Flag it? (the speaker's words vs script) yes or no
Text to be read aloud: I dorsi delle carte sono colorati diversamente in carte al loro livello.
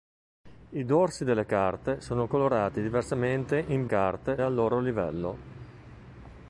no